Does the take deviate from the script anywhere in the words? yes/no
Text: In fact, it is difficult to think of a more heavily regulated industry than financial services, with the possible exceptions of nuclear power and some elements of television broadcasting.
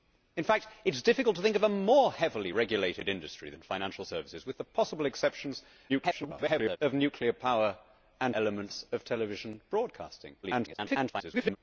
yes